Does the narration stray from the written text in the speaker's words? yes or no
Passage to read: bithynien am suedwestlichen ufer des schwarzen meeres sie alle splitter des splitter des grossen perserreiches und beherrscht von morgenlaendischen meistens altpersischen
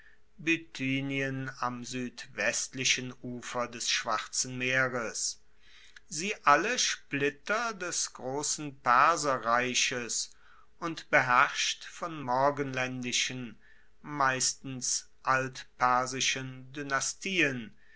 yes